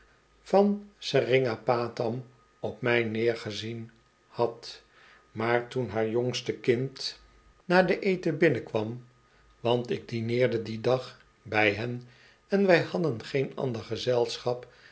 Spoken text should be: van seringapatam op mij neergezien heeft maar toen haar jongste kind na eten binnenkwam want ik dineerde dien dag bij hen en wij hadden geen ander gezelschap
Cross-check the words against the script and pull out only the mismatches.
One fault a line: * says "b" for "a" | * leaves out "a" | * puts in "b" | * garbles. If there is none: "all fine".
* says "had" for "heeft"
* puts in "den"